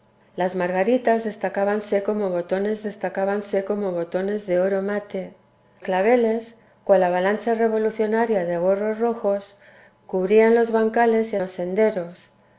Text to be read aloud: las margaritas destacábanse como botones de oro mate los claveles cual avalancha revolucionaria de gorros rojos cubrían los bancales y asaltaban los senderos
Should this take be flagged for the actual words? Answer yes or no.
yes